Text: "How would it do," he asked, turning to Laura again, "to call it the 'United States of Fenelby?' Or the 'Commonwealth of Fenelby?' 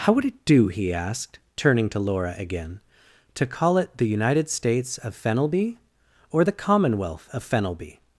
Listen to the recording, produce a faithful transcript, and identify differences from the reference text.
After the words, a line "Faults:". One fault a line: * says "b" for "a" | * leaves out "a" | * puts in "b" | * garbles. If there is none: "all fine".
"How would it do," he asked, turning to Laura again, "to call it the 'United States of Fenelby?' Or the 'Commonwealth of Fenelby?'
Faults:
all fine